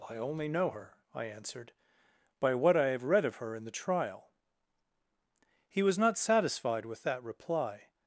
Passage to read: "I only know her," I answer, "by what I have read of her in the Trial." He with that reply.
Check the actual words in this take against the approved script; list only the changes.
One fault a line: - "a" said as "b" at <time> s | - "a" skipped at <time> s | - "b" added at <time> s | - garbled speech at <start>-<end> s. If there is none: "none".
- "answer" said as "answered" at 1.3 s
- "was not satisfied" added at 5.8 s